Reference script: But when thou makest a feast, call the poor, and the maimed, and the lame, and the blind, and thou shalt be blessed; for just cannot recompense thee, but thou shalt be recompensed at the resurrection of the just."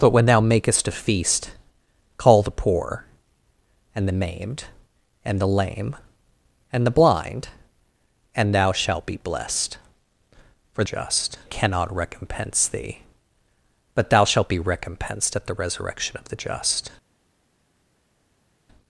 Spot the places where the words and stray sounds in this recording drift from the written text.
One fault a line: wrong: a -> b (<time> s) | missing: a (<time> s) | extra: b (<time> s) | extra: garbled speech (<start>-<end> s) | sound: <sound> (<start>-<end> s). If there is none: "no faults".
no faults